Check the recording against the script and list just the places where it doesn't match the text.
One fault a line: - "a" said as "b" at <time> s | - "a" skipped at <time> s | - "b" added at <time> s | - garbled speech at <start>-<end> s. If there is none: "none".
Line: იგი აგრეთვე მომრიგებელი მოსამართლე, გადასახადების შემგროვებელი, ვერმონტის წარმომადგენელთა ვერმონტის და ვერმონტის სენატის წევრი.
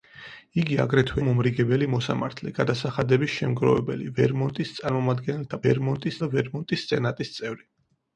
none